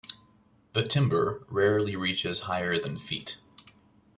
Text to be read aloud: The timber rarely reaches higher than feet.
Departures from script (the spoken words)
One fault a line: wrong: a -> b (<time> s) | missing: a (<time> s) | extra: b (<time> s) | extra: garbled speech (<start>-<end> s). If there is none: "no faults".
no faults